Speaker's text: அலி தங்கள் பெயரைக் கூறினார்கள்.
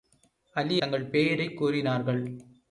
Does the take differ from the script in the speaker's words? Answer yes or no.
no